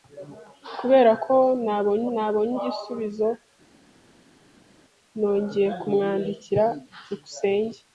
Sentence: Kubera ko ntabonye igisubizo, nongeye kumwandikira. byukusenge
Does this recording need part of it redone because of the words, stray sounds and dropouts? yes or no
yes